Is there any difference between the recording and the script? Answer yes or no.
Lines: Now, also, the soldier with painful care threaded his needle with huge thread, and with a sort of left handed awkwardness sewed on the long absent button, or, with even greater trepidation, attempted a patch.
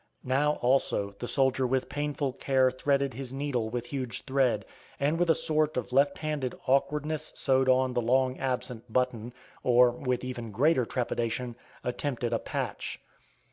no